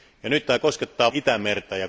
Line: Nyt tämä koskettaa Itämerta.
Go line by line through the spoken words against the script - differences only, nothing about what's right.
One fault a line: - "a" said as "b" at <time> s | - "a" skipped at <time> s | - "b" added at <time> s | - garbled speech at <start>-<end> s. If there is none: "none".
none